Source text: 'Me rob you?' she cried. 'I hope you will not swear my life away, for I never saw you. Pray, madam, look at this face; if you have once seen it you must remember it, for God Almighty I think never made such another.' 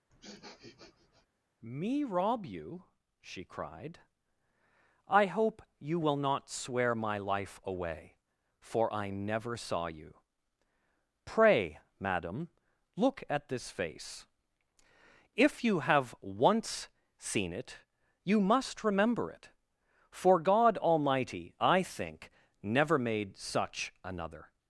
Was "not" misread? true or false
false